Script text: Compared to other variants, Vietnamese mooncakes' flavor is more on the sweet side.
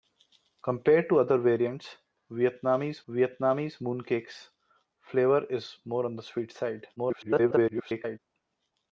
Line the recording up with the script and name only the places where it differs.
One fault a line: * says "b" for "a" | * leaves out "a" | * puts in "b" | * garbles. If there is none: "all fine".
* puts in "Vietnamese"
* garbles